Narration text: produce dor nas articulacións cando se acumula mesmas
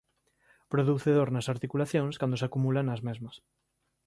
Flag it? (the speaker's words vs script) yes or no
yes